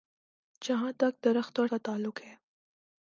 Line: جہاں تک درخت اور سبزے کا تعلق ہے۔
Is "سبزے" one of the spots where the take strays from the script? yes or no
yes